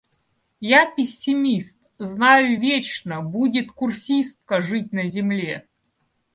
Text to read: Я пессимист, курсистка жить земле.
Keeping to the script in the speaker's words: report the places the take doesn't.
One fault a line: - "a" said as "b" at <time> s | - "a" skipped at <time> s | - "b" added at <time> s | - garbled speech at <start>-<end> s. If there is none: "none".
- "знаю вечно будет" added at 2.0 s
- "на" added at 4.9 s